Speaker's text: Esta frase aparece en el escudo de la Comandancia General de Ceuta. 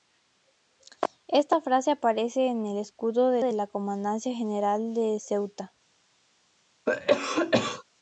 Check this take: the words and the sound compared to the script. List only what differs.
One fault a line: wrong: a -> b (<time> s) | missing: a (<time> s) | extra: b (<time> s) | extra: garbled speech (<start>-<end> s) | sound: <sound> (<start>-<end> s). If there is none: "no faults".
extra: de (3.4 s)
sound: cough (6.9-7.8 s)